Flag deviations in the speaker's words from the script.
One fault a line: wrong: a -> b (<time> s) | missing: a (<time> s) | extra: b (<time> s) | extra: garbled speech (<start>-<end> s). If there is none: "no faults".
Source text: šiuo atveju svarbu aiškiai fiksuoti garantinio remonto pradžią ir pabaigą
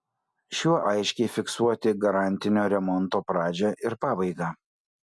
missing: atveju svarbu (0.8 s)